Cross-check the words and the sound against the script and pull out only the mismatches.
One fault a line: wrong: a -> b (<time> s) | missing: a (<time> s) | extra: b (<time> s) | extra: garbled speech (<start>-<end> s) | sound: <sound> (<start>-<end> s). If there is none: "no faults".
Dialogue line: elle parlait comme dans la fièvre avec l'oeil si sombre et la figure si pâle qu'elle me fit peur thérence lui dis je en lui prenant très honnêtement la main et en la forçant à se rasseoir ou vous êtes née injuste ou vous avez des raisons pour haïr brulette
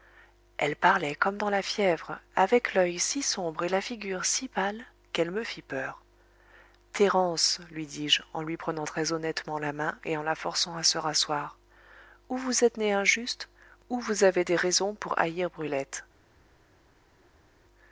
no faults